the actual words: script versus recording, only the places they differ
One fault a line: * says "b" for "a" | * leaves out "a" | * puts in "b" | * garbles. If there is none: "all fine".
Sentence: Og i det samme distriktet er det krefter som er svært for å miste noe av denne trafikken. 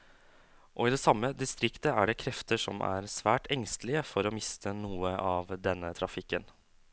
* puts in "engstelige"